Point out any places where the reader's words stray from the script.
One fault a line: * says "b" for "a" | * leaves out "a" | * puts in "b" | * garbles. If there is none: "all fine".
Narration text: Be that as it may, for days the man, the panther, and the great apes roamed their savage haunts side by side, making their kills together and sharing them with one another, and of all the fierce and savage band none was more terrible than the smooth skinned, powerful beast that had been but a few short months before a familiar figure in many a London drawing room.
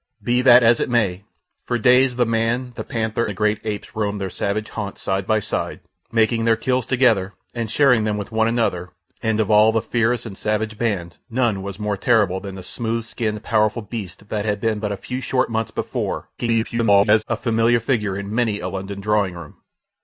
* leaves out "and"
* garbles